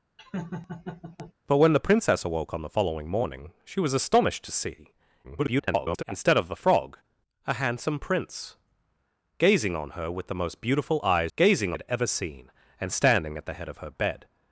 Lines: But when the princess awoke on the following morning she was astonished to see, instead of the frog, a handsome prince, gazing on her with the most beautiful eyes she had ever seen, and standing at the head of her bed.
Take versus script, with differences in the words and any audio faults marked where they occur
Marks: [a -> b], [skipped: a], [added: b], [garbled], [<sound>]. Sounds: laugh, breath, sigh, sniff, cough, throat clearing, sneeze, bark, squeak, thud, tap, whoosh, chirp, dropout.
[laugh] But when the princess awoke on the following morning she was astonished to see, [garbled] instead of the frog, a handsome prince, gazing on her with the most beautiful eyes [she -> gazing] had ever seen, and standing at the head of her bed.